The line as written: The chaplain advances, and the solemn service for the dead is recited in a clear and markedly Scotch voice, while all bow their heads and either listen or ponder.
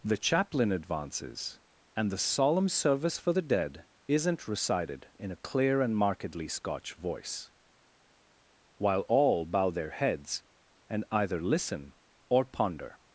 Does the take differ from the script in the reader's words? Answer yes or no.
yes